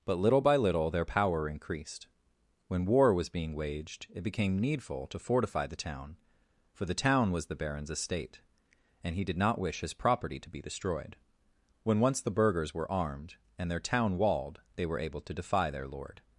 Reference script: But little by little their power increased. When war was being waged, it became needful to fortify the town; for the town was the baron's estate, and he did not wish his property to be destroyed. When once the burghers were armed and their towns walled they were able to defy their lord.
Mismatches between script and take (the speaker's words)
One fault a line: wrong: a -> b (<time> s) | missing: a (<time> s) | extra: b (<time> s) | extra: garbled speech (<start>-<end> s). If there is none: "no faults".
wrong: towns -> town (13.8 s)